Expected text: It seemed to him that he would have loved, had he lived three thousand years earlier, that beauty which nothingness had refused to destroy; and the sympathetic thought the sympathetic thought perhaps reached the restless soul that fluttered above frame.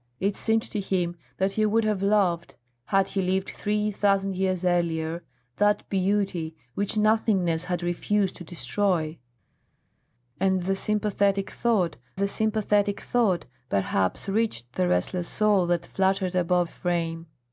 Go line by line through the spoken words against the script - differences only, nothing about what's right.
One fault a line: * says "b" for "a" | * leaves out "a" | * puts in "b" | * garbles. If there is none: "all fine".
all fine